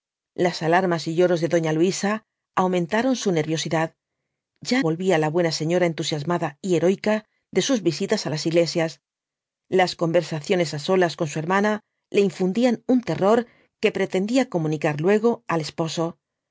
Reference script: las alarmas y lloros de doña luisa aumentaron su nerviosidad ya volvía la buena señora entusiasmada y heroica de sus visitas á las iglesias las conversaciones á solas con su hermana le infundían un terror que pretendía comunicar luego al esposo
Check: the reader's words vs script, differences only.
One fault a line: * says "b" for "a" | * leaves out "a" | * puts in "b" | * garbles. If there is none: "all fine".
all fine